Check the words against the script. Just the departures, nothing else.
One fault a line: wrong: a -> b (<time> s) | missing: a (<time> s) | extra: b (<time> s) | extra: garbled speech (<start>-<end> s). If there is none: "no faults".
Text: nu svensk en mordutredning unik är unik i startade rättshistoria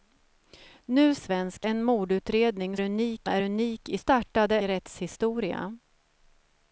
no faults